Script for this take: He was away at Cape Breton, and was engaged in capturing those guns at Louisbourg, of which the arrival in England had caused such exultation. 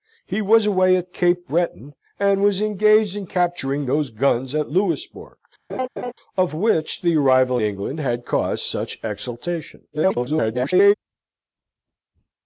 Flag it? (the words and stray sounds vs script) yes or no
yes